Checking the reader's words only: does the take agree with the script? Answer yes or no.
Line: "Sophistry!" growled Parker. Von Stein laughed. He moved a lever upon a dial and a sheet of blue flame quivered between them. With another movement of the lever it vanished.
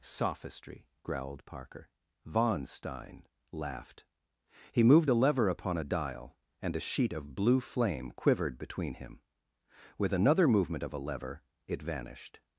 no